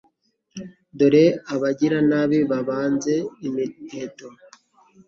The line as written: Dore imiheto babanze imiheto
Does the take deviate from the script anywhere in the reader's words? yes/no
yes